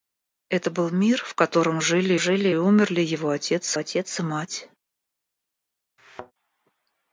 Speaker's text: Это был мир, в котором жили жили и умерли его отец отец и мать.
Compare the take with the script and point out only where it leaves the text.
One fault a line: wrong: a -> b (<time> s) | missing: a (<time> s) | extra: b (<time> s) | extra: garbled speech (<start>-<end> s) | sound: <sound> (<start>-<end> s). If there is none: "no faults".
sound: thud (6.0-6.3 s)